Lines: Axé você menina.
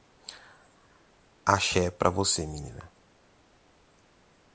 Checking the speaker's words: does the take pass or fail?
fail